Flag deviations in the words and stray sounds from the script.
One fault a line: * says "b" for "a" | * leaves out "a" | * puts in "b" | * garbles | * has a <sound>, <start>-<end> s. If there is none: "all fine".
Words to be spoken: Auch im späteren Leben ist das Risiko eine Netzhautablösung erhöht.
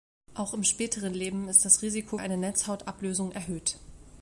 all fine